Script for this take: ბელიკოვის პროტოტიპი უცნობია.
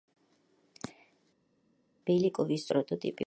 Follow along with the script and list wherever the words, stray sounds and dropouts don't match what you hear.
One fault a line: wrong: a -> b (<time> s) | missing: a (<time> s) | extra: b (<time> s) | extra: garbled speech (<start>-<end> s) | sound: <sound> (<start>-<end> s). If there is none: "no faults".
no faults